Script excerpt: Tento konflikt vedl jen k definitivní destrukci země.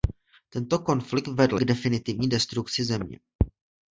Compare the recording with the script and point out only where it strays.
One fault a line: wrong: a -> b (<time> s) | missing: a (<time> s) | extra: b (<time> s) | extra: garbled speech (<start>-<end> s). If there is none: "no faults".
missing: jen (1.6 s)